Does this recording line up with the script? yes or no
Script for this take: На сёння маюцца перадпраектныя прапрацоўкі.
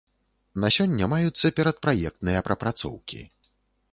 yes